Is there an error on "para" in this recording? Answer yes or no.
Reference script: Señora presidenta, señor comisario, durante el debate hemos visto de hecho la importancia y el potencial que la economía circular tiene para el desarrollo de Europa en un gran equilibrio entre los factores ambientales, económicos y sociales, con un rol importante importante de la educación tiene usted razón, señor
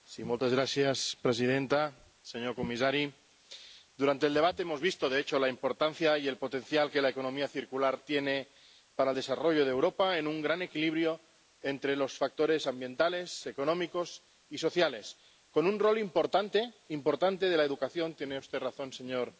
no